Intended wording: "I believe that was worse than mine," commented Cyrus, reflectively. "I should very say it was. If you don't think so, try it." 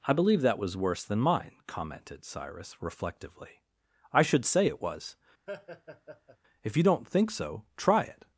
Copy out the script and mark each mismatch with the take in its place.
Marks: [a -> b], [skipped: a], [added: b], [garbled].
"I believe that was worse than mine," commented Cyrus, reflectively. "I should [skipped: very] say it was. If you don't think so, try it."